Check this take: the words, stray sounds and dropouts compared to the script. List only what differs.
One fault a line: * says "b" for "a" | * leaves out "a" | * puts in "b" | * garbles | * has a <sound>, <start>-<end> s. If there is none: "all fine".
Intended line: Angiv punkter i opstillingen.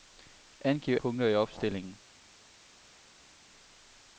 all fine